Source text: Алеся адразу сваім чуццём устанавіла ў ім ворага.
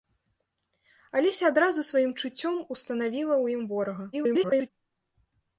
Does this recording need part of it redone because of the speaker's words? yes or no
yes